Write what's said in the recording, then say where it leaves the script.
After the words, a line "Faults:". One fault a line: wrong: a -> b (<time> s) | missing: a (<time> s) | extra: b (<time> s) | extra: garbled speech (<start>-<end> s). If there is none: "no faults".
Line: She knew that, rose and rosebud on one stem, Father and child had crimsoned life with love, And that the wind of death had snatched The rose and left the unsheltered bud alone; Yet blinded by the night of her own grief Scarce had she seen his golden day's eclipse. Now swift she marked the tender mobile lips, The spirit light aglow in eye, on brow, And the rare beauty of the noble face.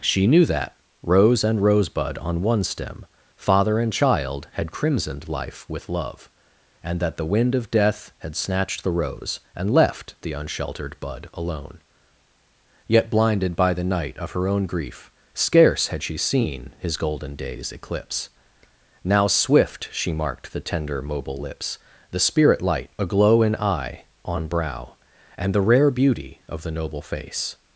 She knew that, rose and rosebud on one stem, Father and child had crimsoned life with love, And that the wind of death had snatched The rose and left the unsheltered bud alone; Yet blinded by the night of her own grief Scarce had she seen his golden day's eclipse. Now swift she marked the tender mobile lips, The spirit light aglow in eye, on brow, And the rare beauty of the noble face.
Faults:
no faults